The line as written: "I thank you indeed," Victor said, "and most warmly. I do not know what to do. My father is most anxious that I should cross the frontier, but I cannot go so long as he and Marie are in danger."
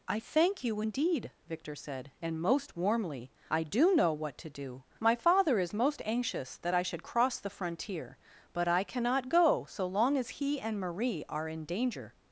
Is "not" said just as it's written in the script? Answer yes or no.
no